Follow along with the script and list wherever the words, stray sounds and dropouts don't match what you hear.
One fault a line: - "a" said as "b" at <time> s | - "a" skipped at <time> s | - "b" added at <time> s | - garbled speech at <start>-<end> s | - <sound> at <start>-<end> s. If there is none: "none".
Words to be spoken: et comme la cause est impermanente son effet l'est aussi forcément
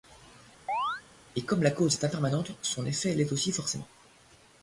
- chirp at 0.7-1.0 s